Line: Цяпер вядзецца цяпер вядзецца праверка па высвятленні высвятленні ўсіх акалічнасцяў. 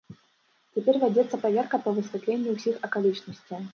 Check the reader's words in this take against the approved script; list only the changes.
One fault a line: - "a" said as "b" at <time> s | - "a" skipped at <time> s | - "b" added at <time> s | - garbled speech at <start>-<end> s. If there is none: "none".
- "цяпер вядзецца" skipped at 1.4 s
- "высвятленні" skipped at 2.5 s